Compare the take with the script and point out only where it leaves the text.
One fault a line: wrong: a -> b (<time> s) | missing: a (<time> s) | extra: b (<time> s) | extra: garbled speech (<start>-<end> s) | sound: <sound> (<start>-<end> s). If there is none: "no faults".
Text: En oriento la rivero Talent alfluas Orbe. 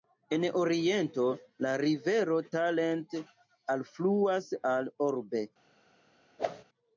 extra: al (4.7 s)
sound: whoosh (6.4-6.6 s)